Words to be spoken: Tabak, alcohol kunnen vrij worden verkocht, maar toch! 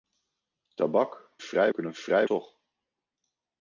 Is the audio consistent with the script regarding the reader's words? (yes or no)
no